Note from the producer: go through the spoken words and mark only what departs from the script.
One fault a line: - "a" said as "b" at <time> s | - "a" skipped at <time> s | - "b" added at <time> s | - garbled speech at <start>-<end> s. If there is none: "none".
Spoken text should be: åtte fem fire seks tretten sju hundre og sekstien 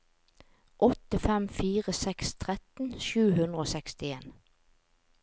none